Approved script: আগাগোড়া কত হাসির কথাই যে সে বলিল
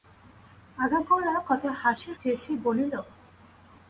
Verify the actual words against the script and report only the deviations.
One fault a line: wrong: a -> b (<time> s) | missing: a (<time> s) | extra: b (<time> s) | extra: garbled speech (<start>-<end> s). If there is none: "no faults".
missing: কথাই (2.1 s)